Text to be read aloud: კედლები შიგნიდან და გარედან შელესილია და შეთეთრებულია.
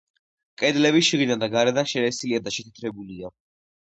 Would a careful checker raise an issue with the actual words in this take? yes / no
no